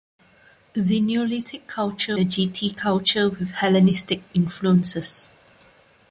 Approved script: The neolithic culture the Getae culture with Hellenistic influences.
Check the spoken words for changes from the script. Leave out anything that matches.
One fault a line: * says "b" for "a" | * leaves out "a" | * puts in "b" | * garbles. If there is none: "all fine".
all fine